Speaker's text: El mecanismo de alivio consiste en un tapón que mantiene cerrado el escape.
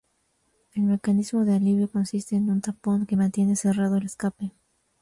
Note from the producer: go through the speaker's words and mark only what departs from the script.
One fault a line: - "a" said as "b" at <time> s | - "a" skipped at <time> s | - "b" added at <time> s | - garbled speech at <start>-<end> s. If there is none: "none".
none